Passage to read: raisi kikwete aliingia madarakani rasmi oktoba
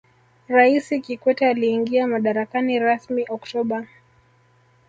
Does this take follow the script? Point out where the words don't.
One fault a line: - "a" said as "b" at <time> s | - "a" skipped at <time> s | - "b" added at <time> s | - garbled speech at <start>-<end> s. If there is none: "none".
none